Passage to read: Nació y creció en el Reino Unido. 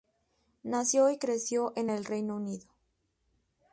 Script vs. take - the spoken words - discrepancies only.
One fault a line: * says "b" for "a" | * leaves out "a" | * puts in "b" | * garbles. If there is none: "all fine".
all fine